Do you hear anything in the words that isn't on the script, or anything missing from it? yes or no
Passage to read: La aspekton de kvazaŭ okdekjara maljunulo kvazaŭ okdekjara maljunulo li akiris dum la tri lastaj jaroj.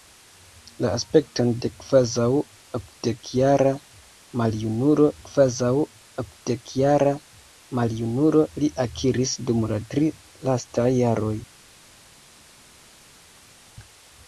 no